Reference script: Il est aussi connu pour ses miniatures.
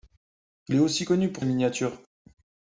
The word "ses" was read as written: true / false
false